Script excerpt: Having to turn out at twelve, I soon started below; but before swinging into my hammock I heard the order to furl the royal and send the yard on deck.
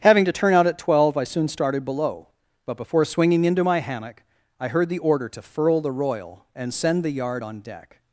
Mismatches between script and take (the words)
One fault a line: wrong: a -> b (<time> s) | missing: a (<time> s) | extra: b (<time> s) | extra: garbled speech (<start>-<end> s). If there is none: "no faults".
no faults